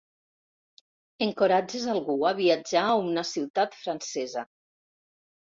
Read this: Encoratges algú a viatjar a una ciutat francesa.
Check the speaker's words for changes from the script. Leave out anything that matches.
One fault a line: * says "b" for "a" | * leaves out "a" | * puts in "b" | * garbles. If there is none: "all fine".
all fine